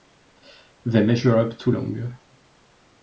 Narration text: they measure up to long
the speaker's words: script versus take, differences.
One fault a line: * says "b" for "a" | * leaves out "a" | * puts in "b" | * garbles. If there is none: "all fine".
all fine